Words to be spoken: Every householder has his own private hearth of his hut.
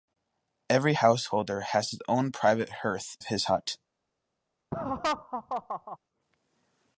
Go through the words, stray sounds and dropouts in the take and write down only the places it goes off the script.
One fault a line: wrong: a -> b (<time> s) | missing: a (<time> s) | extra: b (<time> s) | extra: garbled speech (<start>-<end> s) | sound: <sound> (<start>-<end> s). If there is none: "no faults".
sound: laugh (4.7-6.0 s)